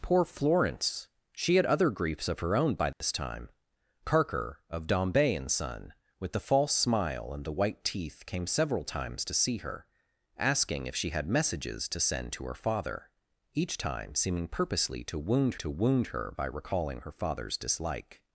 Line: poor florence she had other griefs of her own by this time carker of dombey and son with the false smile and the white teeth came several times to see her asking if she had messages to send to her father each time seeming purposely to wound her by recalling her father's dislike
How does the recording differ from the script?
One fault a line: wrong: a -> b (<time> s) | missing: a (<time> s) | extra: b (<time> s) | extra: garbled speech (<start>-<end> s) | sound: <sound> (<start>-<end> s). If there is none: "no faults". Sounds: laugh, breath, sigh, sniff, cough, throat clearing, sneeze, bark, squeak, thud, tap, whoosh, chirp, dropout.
sound: dropout (2.9-3.0 s)
extra: to wound (15.5 s)